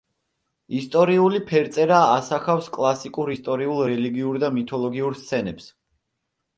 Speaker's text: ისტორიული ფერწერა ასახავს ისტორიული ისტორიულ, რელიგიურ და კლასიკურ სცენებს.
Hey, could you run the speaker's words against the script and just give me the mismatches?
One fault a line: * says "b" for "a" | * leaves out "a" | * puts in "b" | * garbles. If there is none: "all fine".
* says "კლასიკურ" for "ისტორიული"
* says "მითოლოგიურ" for "კლასიკურ"